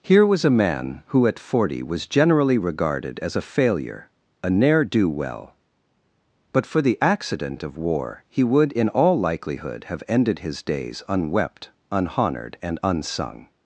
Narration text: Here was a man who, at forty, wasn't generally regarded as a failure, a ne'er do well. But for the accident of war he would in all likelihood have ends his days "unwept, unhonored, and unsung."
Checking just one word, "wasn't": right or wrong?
wrong